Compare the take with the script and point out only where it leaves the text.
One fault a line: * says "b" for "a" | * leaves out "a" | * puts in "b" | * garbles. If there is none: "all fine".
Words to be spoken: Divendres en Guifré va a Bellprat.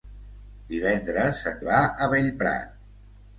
* leaves out "Guifré"